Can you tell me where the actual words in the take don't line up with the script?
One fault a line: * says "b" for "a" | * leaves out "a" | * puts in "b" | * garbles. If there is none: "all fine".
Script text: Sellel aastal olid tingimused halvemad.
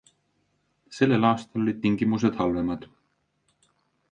all fine